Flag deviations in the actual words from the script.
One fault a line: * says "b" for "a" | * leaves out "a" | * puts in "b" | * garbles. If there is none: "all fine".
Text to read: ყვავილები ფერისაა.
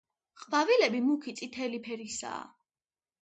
* puts in "მუქი წითელი"